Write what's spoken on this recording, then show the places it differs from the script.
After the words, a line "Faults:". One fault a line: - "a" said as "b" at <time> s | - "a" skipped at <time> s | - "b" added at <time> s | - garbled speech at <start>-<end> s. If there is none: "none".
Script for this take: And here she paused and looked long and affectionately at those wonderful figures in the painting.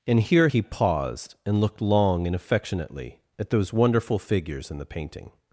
And here he paused and looked long and affectionately at those wonderful figures in the painting.
Faults:
- "she" said as "he" at 0.4 s